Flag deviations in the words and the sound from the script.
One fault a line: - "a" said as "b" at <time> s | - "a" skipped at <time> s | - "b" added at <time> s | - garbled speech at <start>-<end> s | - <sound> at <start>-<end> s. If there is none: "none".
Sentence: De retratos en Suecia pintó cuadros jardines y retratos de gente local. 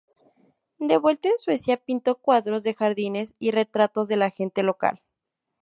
- "retratos" said as "vuelta" at 1.0 s
- "de" added at 2.6 s
- "la" added at 4.2 s